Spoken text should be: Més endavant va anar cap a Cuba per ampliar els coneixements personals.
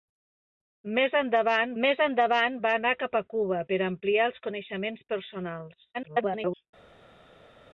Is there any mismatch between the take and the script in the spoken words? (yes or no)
yes